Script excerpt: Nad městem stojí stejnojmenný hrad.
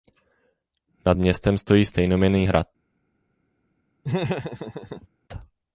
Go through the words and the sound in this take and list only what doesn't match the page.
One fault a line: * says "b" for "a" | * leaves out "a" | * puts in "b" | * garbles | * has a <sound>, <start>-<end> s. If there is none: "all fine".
* has a laugh, 4.0-5.1 s